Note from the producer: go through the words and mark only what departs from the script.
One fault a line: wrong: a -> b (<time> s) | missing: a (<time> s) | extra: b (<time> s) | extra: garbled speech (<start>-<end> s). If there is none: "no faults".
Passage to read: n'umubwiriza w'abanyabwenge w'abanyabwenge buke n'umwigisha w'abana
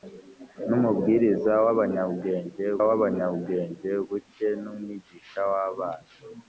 no faults